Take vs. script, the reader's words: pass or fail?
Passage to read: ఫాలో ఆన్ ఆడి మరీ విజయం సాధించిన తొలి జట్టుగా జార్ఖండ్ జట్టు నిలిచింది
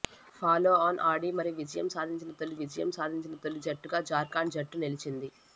fail